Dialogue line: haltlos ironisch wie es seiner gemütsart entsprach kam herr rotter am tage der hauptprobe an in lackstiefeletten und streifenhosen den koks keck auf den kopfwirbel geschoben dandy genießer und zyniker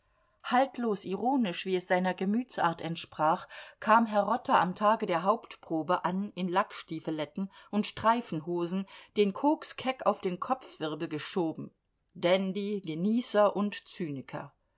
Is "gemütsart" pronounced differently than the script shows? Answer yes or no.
no